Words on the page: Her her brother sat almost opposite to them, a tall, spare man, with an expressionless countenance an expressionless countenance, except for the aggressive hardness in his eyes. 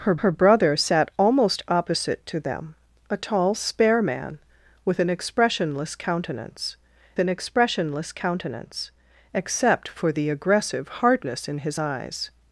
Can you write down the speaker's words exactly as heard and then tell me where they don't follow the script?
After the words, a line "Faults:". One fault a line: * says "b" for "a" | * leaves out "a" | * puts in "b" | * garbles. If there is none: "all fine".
Her her brother sat almost opposite to them, a tall, spare man, with an expressionless countenance an expressionless countenance, except for the aggressive hardness in his eyes.
Faults:
all fine